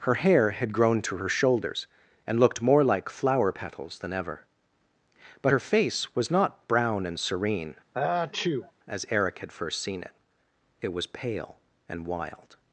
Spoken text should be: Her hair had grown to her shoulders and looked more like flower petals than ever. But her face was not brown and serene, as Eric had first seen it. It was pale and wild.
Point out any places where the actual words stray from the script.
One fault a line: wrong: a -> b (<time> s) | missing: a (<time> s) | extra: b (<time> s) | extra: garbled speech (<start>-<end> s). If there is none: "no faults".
no faults